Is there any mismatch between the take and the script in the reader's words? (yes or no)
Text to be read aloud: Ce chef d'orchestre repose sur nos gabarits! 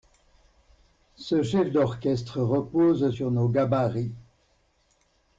no